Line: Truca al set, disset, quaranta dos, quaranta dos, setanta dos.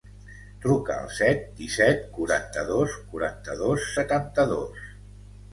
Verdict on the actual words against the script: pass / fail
pass